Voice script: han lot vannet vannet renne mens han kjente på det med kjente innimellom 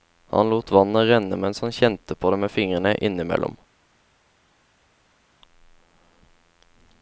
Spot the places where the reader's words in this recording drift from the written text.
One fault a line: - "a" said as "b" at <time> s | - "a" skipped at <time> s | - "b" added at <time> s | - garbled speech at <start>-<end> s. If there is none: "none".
- "vannet" skipped at 1.1 s
- "kjente" said as "fingrene" at 2.5 s